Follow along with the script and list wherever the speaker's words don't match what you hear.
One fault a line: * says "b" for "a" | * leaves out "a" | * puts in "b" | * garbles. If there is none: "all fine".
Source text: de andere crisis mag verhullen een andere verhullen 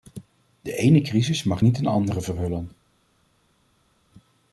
* says "ene" for "andere"
* says "niet" for "verhullen"